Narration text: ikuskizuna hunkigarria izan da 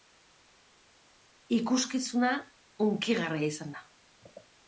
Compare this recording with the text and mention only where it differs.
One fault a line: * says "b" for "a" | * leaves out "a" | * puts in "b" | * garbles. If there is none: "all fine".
all fine